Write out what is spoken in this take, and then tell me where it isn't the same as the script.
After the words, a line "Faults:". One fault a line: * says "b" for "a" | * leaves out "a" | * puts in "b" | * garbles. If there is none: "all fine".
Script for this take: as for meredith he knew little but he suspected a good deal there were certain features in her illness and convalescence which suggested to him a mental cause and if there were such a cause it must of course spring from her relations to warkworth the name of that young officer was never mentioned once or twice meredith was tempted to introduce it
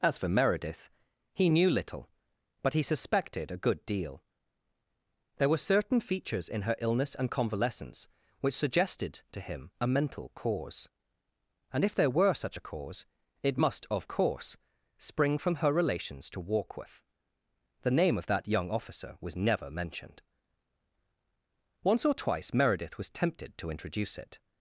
as for meredith he knew little but he suspected a good deal there were certain features in her illness and convalescence which suggested to him a mental cause and if there were such a cause it must of course spring from her relations to warkworth the name of that young officer was never mentioned once or twice meredith was tempted to introduce it
Faults:
all fine